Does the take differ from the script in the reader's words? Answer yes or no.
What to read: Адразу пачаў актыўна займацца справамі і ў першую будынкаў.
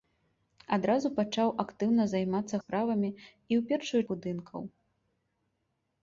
no